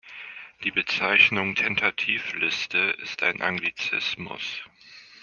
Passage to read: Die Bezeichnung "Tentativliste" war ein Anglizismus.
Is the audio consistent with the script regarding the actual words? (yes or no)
no